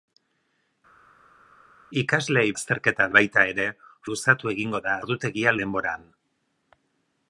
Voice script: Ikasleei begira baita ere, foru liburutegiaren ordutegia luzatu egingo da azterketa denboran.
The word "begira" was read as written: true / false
false